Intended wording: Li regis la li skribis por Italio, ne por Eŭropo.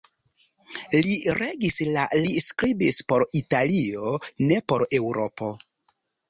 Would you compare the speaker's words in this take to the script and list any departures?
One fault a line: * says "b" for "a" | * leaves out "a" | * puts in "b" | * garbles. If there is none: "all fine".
all fine